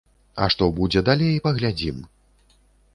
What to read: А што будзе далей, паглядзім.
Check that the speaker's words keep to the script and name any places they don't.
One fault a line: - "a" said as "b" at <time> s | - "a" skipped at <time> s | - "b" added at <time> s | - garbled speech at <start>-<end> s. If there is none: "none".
none